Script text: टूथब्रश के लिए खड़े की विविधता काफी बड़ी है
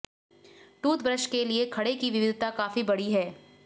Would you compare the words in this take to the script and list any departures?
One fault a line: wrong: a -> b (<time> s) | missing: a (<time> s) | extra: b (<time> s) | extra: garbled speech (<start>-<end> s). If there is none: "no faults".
no faults